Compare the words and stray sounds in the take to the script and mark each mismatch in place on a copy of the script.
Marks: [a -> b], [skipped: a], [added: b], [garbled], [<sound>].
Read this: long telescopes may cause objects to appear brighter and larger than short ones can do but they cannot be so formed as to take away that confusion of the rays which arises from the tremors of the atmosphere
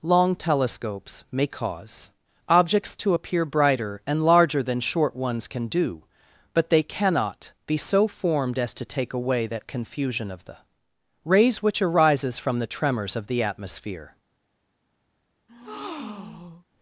long telescopes may cause objects to appear brighter and larger than short ones can do but they cannot be so formed as to take away that confusion of the rays which arises from the tremors of the atmosphere [breath]